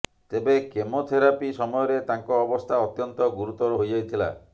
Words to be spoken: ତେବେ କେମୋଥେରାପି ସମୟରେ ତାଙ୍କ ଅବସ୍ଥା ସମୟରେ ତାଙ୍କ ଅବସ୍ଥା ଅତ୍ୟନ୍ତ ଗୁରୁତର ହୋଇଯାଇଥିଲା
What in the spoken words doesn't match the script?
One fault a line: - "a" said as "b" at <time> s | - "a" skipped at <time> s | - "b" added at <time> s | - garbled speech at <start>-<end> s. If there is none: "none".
- "ସମୟରେ ତାଙ୍କ ଅବସ୍ଥା" skipped at 2.8 s